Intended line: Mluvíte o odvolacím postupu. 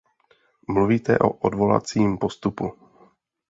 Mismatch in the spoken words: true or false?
false